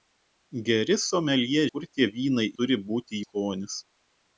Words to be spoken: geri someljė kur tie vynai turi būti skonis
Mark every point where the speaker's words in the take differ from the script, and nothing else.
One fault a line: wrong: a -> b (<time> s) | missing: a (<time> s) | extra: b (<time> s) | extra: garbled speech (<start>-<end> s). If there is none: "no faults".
no faults